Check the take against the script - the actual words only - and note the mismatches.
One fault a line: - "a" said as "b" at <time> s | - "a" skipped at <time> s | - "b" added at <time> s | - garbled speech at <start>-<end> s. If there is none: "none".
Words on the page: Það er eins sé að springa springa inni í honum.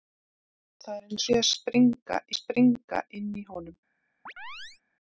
none